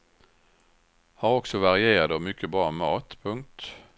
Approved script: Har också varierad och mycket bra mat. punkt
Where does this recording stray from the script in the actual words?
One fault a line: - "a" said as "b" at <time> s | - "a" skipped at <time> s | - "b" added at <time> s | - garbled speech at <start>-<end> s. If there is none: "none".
none